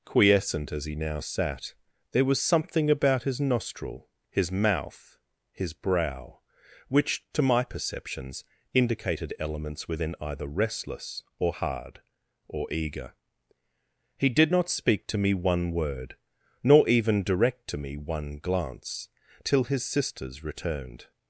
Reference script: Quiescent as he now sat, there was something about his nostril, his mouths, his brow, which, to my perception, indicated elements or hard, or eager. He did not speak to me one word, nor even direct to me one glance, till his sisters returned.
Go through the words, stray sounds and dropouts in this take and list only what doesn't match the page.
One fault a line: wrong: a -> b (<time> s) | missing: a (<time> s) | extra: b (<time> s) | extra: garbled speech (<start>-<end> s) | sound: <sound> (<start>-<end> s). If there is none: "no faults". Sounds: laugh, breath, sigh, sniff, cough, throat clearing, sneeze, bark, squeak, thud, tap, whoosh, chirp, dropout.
wrong: mouths -> mouth (4.5 s)
wrong: perception -> perceptions (7.6 s)
extra: within either restless (9.9 s)